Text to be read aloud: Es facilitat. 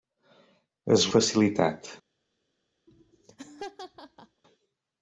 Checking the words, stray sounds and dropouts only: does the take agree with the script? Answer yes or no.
no